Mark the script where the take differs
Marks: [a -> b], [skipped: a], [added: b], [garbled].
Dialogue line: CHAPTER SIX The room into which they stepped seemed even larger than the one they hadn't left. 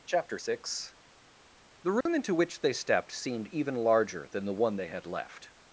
CHAPTER SIX The room into which they stepped seemed even larger than the one they [hadn't -> had] left.